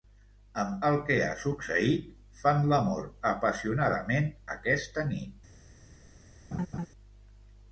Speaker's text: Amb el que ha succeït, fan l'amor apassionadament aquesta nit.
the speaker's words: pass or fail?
pass